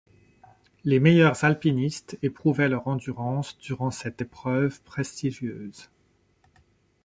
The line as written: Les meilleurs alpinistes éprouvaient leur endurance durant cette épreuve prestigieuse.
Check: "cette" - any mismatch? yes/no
no